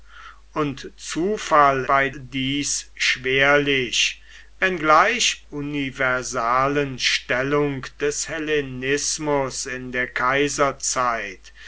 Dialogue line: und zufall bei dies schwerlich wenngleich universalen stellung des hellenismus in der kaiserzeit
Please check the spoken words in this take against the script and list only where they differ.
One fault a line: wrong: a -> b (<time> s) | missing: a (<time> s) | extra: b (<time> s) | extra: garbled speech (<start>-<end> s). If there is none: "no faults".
no faults